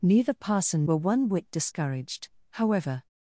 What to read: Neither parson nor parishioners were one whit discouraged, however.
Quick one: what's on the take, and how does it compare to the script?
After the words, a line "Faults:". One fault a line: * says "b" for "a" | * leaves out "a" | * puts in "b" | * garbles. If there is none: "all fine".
Neither parson were one whit discouraged, however.
Faults:
* leaves out "nor parishioners"